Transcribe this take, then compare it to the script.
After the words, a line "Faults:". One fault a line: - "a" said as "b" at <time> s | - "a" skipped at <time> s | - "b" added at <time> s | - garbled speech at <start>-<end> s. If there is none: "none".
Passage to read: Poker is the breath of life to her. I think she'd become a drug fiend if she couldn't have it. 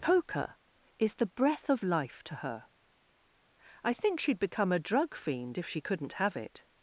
Poker is the breath of life to her. I think she'd become a drug fiend if she couldn't have it.
Faults:
none